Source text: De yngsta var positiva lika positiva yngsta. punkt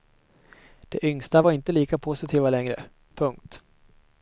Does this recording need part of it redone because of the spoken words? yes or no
yes